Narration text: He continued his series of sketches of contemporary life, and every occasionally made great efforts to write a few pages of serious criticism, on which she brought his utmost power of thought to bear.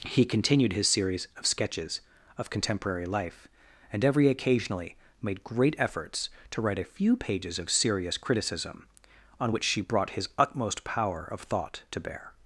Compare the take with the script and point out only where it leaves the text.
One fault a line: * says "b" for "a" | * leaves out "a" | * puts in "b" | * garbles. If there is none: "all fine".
all fine